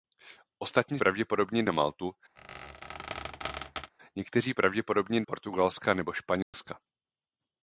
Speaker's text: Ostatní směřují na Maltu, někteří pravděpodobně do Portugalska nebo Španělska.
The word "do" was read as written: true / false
false